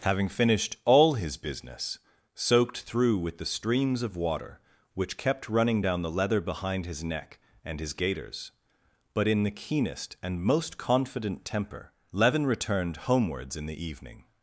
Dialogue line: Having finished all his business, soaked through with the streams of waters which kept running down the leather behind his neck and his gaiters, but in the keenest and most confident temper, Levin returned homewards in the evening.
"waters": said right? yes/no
no